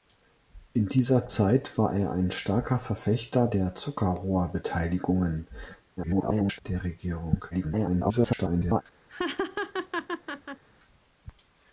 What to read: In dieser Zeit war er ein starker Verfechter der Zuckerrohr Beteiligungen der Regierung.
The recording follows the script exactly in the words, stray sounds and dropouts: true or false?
false